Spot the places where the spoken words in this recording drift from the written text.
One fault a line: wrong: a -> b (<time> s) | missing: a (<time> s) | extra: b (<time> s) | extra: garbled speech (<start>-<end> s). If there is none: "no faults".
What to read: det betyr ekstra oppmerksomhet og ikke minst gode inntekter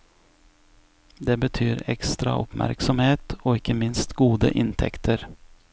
no faults